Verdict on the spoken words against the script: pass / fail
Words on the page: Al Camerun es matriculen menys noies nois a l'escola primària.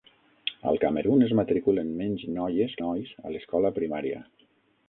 pass